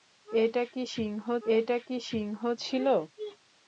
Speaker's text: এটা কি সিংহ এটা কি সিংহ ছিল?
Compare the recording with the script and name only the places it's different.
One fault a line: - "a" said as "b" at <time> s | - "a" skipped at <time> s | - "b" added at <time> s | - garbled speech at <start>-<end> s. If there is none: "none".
none